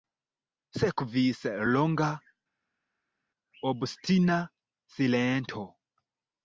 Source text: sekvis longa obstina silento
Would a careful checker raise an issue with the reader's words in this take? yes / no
no